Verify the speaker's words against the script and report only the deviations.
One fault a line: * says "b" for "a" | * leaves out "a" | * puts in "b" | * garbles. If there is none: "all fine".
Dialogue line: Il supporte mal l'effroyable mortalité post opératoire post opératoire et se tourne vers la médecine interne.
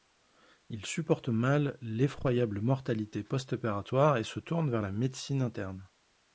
* leaves out "post opératoire"